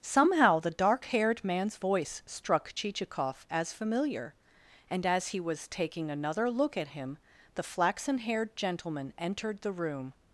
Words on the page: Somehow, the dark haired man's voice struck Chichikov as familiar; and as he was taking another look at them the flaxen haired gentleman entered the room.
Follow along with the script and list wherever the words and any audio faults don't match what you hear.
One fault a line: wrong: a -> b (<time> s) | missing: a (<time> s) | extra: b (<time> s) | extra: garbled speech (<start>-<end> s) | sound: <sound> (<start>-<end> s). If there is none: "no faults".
wrong: them -> him (6.9 s)